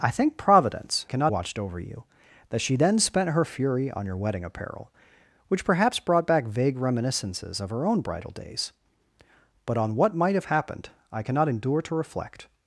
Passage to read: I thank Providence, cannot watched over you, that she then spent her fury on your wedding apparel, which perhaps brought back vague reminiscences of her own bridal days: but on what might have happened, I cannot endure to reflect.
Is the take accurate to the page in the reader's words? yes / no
yes